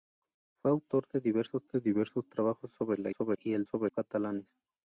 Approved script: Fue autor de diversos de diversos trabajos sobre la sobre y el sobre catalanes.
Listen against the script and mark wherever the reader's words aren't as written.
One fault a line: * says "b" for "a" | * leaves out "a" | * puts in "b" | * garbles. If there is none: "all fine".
all fine